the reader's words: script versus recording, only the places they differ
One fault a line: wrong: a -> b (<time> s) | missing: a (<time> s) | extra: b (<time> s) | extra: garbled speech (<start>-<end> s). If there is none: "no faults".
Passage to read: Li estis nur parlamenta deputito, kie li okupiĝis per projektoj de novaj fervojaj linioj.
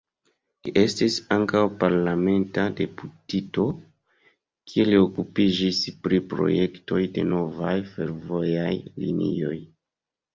wrong: nur -> ankaŭ (1.3 s)
wrong: per -> pri (6.1 s)